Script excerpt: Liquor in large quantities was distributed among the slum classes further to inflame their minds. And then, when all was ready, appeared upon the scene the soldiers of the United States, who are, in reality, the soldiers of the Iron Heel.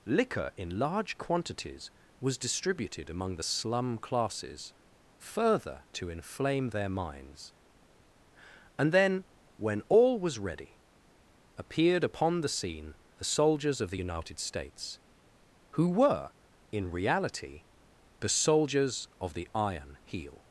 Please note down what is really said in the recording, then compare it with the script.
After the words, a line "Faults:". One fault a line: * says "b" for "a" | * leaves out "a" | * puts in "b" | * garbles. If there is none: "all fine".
Liquor in large quantities was distributed among the slum classes further to inflame their minds. And then, when all was ready, appeared upon the scene the soldiers of the United States, who were, in reality, the soldiers of the Iron Heel.
Faults:
* says "were" for "are"